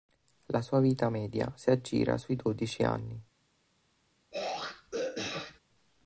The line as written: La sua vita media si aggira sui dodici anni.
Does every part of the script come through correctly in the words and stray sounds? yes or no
no